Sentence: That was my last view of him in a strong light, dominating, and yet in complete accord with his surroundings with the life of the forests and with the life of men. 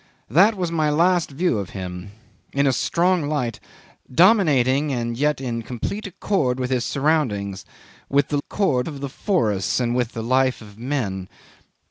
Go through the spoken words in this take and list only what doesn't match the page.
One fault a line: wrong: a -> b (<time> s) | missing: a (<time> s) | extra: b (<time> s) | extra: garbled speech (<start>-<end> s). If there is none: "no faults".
wrong: life -> accord (8.4 s)